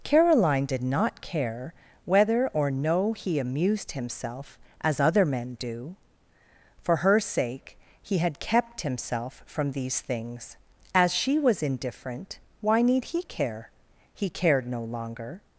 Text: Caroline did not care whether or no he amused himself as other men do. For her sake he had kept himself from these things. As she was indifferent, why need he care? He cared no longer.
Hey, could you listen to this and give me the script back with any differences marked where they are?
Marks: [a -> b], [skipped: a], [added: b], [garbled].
Caroline did not care whether or no he amused himself as other men do. For her sake he had kept himself from these things. As she was indifferent, why need he care? He cared no longer.